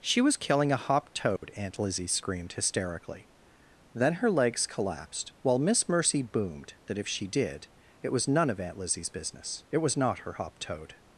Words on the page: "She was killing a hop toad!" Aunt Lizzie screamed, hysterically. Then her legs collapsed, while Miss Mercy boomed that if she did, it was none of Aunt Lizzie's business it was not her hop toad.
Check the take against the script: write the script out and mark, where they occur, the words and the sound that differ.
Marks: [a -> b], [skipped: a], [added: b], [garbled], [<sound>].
"She was killing a hop toad!" [dropout] Aunt Lizzie screamed, hysterically. Then her legs collapsed, while Miss Mercy boomed that if she did, it was none of Aunt Lizzie's business it was not her hop toad.